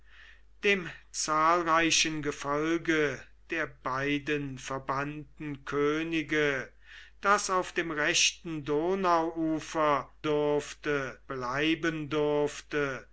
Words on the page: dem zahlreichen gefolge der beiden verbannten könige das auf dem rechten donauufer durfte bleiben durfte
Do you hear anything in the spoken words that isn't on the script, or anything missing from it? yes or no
no